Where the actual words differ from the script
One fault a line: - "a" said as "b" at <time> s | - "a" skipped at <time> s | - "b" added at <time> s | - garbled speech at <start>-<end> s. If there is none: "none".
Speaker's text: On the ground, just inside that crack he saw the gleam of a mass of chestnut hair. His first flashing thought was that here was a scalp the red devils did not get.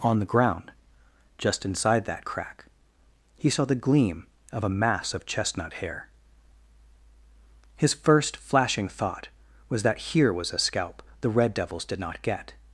none